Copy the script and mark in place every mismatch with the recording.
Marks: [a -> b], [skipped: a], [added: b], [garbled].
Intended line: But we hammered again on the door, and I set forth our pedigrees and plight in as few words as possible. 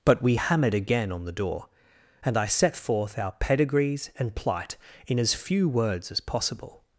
But we hammered again on the door, and I set forth our pedigrees and plight in as few words as possible.